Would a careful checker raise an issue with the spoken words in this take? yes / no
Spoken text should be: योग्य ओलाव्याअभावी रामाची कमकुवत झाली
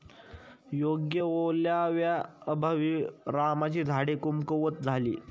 yes